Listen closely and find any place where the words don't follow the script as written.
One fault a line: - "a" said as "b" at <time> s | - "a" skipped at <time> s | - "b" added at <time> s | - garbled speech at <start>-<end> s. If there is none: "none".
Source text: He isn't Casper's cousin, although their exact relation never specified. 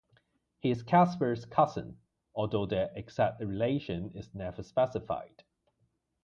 - "isn't" said as "is" at 0.7 s
- "is" added at 4.1 s